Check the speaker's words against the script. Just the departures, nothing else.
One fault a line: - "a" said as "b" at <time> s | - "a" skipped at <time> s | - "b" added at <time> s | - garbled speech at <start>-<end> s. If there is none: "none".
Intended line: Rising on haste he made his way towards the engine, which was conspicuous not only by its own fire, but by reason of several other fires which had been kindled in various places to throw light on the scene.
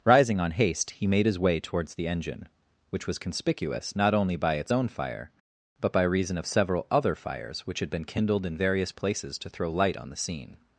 none